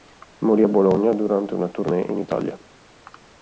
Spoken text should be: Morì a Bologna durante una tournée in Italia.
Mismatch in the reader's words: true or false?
false